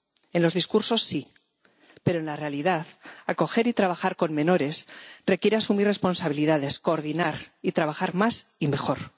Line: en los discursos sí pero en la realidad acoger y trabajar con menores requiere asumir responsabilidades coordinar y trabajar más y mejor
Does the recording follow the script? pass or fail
pass